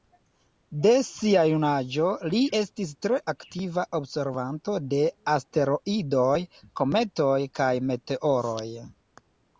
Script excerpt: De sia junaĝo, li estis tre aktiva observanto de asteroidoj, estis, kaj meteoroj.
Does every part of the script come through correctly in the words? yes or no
no